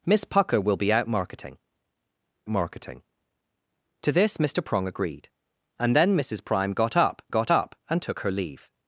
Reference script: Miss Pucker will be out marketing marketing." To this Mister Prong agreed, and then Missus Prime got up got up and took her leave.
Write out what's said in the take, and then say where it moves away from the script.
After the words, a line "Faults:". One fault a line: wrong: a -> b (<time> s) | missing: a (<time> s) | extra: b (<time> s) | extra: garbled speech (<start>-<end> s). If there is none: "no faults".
Miss Pucker will be out marketing marketing." To this Mister Prong agreed, and then Missus Prime got up got up and took her leave.
Faults:
no faults